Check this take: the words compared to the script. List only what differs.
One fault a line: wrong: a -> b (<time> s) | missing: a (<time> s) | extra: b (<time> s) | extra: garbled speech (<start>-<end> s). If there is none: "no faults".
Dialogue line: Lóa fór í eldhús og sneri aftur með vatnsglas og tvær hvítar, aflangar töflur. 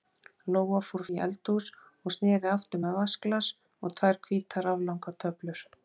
no faults